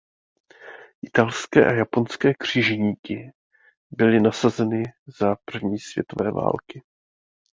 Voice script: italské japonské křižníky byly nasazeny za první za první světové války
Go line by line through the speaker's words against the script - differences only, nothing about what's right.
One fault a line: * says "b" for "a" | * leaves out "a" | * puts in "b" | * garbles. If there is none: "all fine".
* puts in "a"
* leaves out "za první"